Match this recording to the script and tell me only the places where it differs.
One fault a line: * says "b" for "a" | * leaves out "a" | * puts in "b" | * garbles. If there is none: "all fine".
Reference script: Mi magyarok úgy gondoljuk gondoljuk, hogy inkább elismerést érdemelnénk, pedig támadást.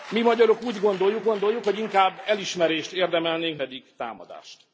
all fine